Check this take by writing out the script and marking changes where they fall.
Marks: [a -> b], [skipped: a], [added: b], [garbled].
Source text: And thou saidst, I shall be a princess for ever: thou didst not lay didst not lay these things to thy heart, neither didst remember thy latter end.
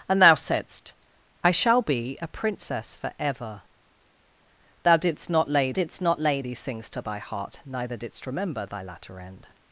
And thou saidst, I shall be a princess for ever: thou didst not lay didst not lay these things to thy heart, neither didst remember thy latter end.